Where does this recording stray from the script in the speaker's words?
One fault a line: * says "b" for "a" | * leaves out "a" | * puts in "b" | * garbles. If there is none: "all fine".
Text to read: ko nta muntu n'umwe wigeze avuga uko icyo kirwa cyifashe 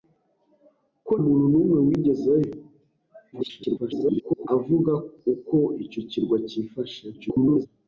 * leaves out "nta"
* garbles
* garbles